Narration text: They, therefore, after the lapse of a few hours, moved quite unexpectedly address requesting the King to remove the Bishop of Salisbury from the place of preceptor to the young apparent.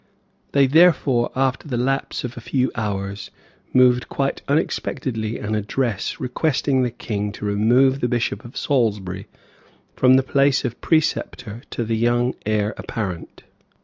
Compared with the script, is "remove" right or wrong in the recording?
right